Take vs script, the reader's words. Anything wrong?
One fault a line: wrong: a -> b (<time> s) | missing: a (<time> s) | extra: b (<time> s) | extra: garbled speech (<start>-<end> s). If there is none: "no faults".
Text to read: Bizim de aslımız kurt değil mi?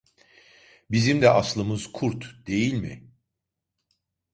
no faults